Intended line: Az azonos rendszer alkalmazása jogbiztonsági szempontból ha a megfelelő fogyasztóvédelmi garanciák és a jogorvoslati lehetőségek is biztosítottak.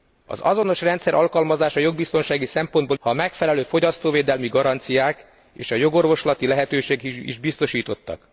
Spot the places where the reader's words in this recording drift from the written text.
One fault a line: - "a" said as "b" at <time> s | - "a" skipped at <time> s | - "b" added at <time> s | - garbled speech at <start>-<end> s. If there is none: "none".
none